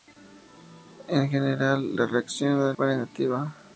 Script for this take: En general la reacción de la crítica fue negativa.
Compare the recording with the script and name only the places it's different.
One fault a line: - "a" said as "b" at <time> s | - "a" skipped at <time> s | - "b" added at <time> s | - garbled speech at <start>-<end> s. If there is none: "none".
- "la crítica" skipped at 2.7 s